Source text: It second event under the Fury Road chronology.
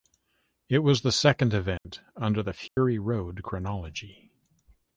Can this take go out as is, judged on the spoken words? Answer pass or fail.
fail